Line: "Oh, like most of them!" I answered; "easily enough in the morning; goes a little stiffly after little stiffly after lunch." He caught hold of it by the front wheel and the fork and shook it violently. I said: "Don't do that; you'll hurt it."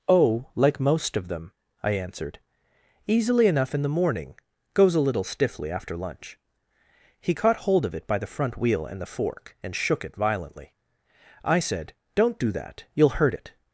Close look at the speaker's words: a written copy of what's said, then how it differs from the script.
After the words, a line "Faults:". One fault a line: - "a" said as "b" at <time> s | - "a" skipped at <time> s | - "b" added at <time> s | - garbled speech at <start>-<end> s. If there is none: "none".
"Oh, like most of them!" I answered; "easily enough in the morning; goes a little stiffly after lunch." He caught hold of it by the front wheel and the fork and shook it violently. I said: "Don't do that; you'll hurt it."
Faults:
- "little stiffly after" skipped at 6.0 s